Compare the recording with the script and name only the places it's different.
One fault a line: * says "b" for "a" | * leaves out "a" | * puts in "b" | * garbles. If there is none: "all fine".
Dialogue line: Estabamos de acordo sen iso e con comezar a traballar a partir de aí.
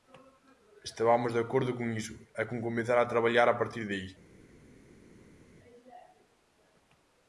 * says "con" for "sen"